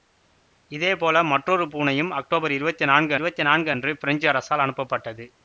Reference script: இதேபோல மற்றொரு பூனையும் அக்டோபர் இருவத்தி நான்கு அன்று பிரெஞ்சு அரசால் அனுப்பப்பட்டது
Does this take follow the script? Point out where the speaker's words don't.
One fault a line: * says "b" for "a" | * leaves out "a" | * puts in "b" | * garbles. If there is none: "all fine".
* puts in "இருவத்தி நான்கு"